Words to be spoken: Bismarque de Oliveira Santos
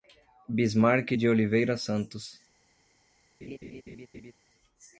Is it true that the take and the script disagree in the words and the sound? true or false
true